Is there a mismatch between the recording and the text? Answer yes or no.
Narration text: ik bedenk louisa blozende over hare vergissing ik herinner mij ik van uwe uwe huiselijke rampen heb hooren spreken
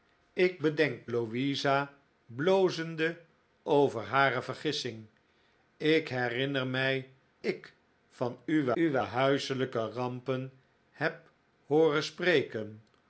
no